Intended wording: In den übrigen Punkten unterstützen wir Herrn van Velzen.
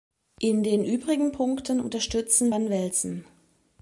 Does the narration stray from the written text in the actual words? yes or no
yes